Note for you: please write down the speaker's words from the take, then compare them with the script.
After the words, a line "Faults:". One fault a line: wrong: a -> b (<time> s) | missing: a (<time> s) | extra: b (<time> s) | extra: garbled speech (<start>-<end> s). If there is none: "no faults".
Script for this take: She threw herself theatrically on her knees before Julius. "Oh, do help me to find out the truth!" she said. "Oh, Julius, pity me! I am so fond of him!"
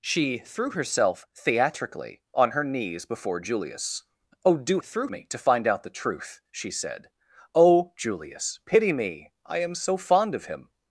She threw herself theatrically on her knees before Julius. "Oh, do threw me to find out the truth!" she said. "Oh, Julius, pity me! I am so fond of him!"
Faults:
wrong: help -> threw (4.8 s)